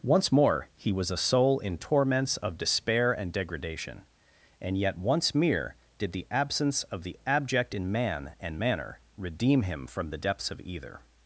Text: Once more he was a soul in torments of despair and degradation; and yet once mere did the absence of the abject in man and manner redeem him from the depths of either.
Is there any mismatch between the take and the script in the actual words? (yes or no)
no